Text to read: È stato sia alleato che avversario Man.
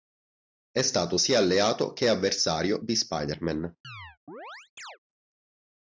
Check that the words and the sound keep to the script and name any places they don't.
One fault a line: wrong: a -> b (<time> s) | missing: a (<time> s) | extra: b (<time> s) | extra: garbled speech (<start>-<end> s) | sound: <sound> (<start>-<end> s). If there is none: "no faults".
extra: di Spider (2.8 s)
sound: chirp (3.8-5.0 s)